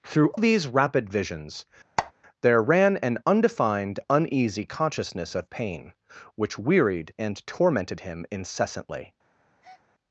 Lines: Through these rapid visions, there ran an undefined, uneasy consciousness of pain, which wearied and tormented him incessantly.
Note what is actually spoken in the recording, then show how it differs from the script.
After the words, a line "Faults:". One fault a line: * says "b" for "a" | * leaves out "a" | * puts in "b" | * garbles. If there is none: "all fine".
Through these rapid visions, there ran an undefined, uneasy consciousness of pain, which wearied and tormented him incessantly.
Faults:
all fine